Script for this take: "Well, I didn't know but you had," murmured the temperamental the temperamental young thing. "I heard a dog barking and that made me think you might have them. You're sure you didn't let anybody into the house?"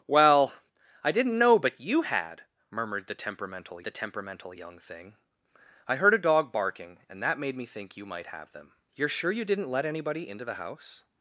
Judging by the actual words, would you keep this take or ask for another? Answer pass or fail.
pass